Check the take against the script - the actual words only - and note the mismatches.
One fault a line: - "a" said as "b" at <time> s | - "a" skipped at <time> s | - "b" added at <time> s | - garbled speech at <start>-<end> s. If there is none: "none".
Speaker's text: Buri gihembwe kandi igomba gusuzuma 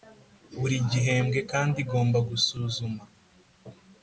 none